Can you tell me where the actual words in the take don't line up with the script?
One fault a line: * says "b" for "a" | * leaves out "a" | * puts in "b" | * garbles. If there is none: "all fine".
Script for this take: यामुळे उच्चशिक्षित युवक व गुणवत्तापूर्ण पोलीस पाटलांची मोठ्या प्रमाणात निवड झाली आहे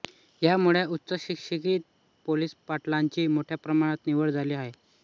* leaves out "युवक व गुणवत्तापूर्ण"